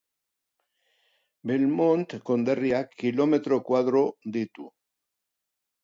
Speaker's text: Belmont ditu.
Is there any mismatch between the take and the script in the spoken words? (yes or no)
yes